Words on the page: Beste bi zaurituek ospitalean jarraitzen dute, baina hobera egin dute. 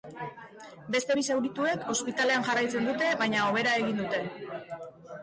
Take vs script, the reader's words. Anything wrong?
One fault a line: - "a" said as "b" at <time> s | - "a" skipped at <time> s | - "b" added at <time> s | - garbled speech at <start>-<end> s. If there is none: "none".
none